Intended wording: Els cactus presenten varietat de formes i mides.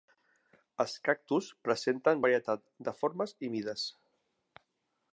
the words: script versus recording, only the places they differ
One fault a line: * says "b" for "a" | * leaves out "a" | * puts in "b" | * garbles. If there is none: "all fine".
all fine